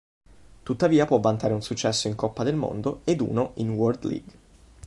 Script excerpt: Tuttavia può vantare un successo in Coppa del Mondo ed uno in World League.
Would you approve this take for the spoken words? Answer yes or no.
yes